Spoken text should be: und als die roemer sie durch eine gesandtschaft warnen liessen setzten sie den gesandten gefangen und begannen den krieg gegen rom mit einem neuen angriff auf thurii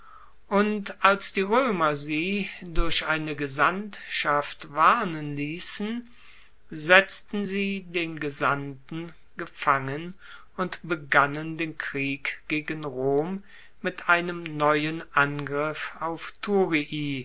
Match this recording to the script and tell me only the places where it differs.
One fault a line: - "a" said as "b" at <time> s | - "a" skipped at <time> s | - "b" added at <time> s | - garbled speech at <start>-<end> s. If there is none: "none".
none